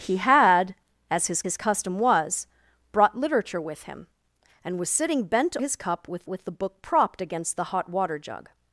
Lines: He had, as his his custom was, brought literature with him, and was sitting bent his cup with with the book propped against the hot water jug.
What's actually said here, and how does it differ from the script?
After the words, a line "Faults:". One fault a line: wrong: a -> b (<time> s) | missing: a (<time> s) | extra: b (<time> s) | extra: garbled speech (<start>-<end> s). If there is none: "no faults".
He had, as his his custom was, brought literature with him, and was sitting bent his cup with with the book propped against the hot water jug.
Faults:
no faults